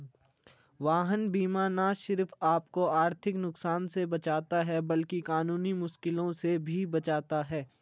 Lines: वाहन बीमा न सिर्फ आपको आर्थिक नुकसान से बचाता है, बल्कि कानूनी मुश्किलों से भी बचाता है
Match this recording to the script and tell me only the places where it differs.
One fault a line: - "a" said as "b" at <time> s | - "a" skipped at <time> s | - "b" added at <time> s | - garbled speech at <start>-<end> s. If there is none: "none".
none